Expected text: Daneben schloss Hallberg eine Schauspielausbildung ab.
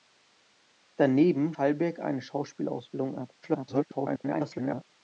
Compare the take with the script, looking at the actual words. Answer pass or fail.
fail